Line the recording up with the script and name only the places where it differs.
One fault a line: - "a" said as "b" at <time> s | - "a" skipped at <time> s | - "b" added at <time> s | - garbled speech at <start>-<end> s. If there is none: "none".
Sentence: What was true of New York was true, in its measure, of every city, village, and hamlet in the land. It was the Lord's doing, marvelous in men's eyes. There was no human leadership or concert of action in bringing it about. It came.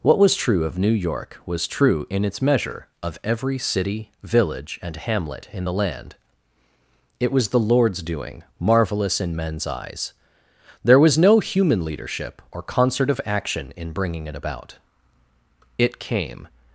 none